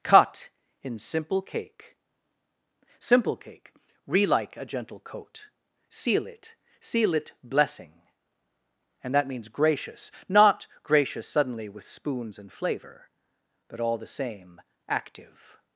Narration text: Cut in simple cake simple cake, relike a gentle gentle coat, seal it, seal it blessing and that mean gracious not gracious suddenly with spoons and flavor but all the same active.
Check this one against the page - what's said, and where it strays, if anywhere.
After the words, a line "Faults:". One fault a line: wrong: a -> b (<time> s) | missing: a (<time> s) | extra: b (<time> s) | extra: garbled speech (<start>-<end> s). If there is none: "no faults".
Cut in simple cake simple cake, relike a gentle coat, seal it, seal it blessing and that means gracious not gracious suddenly with spoons and flavor but all the same active.
Faults:
missing: gentle (5.0 s)
wrong: mean -> means (9.3 s)